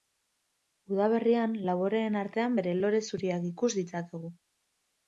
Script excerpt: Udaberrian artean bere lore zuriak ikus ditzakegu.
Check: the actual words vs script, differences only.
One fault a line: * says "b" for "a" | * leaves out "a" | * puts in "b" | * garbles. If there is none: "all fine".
* puts in "laboreen"